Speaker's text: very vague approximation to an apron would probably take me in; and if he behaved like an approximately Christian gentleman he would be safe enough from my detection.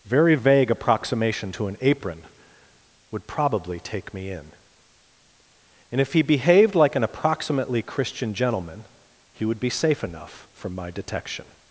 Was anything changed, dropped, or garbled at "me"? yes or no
no